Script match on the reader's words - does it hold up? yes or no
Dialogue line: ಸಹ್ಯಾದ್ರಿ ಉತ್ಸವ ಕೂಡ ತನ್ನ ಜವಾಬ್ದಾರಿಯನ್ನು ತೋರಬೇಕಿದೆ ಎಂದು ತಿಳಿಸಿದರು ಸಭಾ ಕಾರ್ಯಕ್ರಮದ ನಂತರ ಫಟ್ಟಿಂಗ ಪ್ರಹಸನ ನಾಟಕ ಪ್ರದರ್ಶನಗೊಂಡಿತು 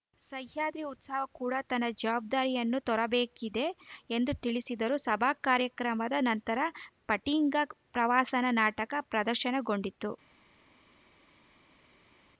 yes